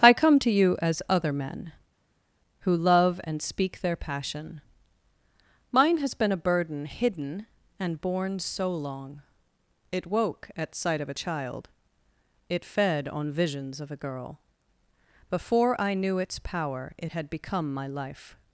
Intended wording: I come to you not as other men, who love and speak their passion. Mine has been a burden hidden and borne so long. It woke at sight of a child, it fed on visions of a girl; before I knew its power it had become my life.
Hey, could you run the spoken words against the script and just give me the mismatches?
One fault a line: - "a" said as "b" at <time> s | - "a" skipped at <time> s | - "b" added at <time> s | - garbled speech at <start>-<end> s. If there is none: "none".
- "not" skipped at 0.8 s